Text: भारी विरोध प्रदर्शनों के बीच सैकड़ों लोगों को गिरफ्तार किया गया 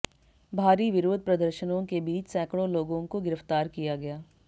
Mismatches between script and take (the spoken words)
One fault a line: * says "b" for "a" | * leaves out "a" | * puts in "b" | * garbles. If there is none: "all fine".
all fine